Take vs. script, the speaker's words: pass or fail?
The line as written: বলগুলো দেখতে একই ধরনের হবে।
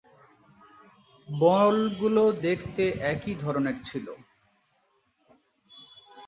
fail